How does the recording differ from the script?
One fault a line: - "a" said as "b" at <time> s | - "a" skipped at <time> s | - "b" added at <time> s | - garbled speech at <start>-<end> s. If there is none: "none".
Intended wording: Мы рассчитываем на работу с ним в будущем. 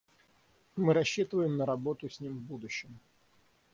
none